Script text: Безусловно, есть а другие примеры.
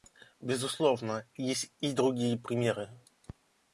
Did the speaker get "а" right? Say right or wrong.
wrong